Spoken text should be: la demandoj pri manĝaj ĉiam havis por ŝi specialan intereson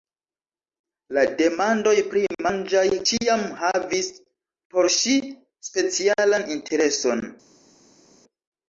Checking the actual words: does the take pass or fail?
pass